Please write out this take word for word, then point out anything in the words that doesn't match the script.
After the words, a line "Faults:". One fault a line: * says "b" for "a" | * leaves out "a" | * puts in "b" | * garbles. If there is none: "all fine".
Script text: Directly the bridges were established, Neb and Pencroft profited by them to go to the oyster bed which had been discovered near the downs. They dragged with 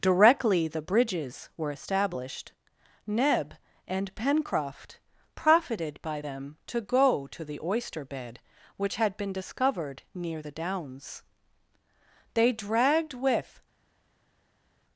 Directly the bridges were established, Neb and Pencroft profited by them to go to the oyster bed which had been discovered near the downs. They dragged with
Faults:
all fine